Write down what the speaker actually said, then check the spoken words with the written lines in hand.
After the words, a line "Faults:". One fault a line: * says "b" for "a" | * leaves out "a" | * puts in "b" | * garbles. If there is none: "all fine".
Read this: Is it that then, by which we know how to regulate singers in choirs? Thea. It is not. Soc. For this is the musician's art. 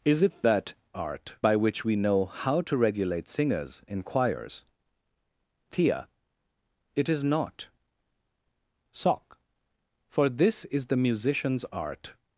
Is it that art, by which we know how to regulate singers in choirs? Thea. It is not. Soc. For this is the musician's art.
Faults:
* says "art" for "then"